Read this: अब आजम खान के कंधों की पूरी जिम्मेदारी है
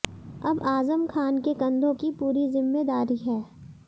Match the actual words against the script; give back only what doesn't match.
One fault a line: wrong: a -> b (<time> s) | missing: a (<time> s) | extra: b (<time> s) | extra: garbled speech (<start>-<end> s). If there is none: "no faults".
no faults